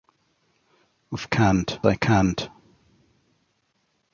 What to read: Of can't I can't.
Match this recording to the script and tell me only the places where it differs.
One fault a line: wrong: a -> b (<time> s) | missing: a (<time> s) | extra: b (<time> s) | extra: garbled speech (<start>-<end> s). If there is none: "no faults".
no faults